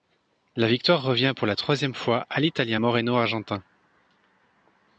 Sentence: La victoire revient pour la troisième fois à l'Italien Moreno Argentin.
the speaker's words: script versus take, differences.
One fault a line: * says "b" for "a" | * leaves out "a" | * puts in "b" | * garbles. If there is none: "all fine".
all fine